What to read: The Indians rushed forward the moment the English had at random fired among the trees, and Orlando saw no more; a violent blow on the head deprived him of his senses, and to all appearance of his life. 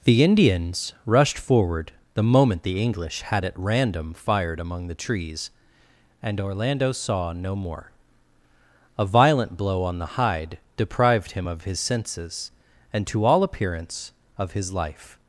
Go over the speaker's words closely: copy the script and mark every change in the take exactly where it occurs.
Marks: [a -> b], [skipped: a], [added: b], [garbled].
The Indians rushed forward the moment the English had at random fired among the trees, and Orlando saw no more; a violent blow on the [head -> hide] deprived him of his senses, and to all appearance of his life.